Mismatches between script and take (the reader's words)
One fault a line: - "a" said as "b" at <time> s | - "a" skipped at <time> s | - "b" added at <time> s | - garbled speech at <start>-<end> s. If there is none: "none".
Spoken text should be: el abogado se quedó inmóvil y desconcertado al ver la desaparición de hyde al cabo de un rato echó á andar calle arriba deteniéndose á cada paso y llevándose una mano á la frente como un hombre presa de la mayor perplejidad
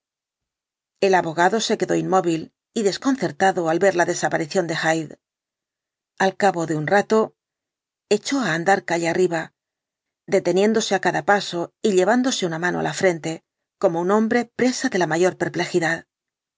none